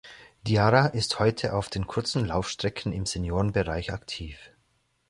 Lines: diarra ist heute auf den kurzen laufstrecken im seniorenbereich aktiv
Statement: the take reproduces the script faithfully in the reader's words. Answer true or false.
true